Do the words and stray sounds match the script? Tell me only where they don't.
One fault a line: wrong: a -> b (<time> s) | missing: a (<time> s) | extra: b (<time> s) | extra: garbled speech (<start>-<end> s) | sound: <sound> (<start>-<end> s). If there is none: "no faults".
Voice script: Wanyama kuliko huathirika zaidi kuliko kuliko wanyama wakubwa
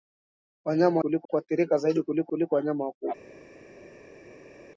no faults